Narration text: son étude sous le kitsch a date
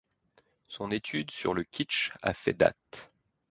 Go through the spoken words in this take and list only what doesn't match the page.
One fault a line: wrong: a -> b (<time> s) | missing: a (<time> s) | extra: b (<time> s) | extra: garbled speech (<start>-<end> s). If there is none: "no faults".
wrong: sous -> sur (1.3 s)
extra: fait (2.3 s)